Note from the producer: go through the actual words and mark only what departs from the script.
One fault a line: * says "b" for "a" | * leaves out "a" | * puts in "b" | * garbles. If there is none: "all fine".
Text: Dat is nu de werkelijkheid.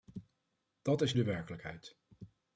* leaves out "nu"